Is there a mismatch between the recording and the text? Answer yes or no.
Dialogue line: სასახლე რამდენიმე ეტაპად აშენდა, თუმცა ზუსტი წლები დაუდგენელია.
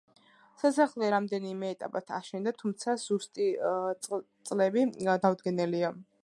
no